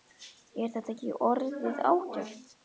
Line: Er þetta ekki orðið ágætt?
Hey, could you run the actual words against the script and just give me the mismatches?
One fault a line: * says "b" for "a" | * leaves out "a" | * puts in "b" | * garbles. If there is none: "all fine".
all fine